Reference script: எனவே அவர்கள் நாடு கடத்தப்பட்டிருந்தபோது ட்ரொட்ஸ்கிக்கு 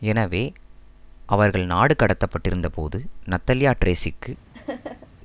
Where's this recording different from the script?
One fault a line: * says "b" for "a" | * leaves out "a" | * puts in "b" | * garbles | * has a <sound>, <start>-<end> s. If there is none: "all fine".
* puts in "நத்தலியா"
* has a laugh, 4.5-5.1 s